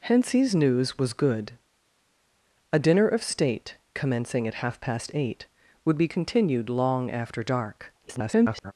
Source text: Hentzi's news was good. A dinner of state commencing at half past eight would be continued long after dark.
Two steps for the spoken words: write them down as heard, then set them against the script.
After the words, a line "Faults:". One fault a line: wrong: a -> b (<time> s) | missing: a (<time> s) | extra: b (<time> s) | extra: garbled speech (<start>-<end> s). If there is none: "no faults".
Hentzi's news was good. A dinner of state commencing at half past eight would be continued long after dark. [garbled]
Faults:
extra: garbled speech (8.0-8.7 s)